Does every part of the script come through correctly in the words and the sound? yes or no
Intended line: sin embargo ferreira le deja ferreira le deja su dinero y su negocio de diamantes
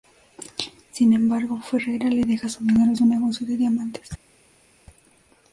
no